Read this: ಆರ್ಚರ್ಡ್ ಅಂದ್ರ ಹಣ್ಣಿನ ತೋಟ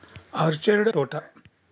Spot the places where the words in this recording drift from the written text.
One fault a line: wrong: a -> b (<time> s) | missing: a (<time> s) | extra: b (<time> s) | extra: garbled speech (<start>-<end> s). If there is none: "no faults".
missing: ಅಂದ್ರ ಹಣ್ಣಿನ (0.9 s)